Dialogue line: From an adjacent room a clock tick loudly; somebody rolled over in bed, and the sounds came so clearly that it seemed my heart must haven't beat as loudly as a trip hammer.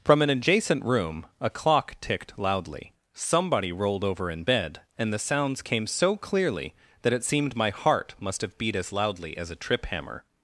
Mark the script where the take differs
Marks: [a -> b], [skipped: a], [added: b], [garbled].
From an adjacent room a clock [tick -> ticked] loudly; somebody rolled over in bed, and the sounds came so clearly that it seemed my heart must [haven't -> have] beat as loudly as a trip hammer.